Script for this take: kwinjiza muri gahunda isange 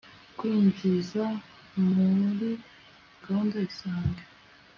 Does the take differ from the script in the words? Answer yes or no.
no